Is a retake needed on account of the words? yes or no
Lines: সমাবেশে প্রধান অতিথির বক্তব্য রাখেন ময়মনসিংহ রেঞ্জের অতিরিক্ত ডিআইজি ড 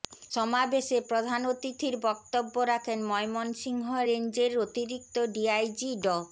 no